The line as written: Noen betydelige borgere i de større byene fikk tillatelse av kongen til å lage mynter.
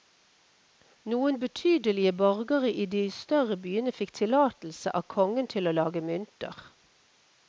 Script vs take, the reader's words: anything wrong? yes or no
no